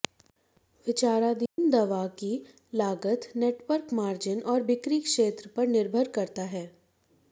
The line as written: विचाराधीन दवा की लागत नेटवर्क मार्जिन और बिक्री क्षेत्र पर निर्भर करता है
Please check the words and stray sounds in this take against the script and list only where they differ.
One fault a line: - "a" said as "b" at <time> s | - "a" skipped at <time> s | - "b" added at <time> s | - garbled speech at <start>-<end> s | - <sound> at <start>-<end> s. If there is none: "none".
- dropout at 1.5-1.6 s